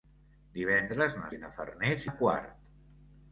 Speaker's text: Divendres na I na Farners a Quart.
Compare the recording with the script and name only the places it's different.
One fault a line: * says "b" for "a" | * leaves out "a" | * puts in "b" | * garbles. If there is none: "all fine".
all fine